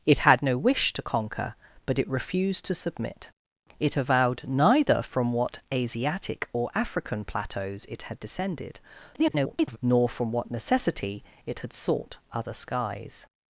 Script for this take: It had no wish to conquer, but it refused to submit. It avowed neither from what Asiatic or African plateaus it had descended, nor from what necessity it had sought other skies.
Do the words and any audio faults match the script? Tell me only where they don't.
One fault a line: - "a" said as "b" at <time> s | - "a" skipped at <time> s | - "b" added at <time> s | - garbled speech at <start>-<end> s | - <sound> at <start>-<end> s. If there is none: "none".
- garbled speech at 9.1-9.8 s